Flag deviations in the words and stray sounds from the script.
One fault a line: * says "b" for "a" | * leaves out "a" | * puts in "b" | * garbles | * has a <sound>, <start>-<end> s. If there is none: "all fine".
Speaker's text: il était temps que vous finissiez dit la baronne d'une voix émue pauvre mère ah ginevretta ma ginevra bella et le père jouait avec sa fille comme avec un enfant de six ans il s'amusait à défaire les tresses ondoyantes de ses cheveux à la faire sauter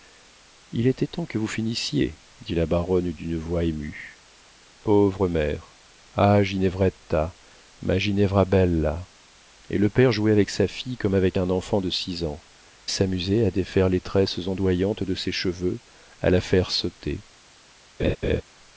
* leaves out "il"
* has a laugh, 18.0-18.4 s